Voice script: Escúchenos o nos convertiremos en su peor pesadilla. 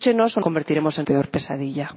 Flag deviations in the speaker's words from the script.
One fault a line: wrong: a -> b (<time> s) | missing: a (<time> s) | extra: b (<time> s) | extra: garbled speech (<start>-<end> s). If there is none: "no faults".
missing: nos (0.4 s)
missing: su (1.1 s)